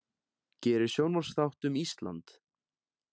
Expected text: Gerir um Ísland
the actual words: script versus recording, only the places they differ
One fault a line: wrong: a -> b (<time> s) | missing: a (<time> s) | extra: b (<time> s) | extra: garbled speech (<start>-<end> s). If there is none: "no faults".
extra: sjónvarpsþátt (0.9 s)